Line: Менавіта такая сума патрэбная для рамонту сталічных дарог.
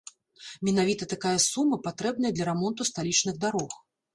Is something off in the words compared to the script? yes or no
no